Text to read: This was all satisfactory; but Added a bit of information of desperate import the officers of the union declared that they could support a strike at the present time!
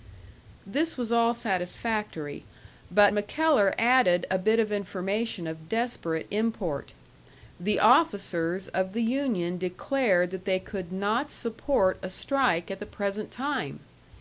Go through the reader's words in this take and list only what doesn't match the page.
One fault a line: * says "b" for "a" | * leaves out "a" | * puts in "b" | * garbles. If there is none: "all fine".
* puts in "MacKellar"
* puts in "not"